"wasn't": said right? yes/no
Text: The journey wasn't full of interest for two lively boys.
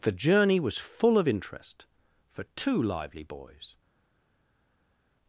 no